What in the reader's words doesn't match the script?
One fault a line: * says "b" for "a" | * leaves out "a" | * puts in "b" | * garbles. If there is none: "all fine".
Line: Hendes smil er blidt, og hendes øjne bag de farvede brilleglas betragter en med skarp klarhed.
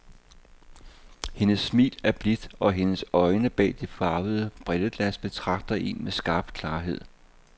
all fine